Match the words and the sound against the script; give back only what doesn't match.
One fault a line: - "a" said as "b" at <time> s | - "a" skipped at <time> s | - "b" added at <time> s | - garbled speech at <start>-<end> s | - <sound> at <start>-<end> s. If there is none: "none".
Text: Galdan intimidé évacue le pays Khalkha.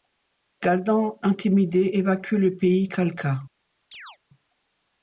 - chirp at 3.9-4.2 s